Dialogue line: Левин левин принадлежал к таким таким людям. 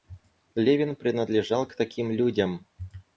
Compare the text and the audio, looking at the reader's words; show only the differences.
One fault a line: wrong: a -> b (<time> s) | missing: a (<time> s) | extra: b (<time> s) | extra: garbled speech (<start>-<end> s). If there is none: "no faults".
missing: левин (0.9 s)
missing: таким (2.1 s)